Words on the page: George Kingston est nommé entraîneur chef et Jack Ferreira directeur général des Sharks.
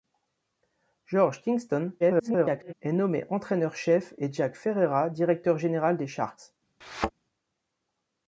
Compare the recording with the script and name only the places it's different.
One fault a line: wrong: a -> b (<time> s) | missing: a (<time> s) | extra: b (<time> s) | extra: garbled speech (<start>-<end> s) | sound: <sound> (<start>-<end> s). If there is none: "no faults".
extra: garbled speech (2.0-2.7 s)
sound: thud (6.8-7.1 s)